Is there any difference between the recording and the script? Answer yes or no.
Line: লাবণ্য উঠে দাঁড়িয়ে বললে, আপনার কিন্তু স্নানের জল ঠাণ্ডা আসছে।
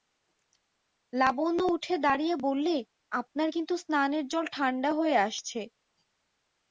yes